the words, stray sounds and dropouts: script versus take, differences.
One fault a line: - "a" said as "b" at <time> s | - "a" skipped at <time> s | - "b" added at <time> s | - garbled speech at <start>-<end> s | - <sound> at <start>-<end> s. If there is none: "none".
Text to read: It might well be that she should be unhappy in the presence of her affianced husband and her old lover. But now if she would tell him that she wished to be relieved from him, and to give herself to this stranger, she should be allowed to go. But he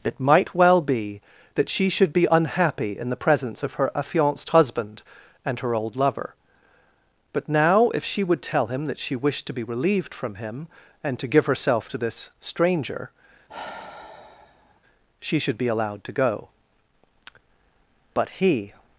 - sigh at 13.5-14.8 s